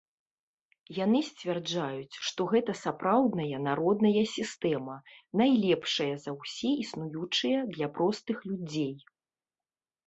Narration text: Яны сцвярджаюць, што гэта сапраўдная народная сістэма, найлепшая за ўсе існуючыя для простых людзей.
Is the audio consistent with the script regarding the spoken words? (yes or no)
yes